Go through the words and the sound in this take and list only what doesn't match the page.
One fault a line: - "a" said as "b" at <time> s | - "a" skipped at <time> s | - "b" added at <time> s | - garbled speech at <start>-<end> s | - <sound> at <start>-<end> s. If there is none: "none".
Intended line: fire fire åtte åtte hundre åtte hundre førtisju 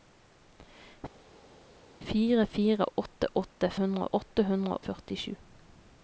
none